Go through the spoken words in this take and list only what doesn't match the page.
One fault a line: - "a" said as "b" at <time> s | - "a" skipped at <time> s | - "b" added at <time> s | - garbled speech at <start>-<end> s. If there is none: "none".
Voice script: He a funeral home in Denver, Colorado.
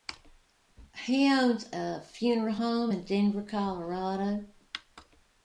- "owns" added at 1.3 s